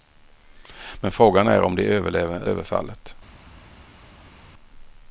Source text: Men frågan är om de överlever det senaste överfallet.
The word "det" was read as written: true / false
false